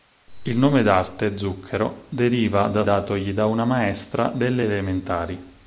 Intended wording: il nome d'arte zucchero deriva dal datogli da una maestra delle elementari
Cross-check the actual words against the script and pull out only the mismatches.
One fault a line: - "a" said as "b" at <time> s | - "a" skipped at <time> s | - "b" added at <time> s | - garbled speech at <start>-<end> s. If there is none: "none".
none